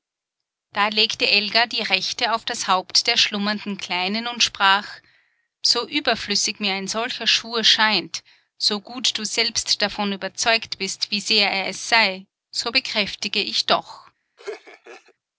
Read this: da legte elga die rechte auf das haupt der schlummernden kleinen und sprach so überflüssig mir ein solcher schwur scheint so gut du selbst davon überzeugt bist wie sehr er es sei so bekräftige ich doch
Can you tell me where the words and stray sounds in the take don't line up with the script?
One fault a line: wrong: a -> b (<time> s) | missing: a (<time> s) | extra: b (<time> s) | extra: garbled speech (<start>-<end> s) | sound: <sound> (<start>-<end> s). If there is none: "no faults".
sound: laugh (14.4-15.1 s)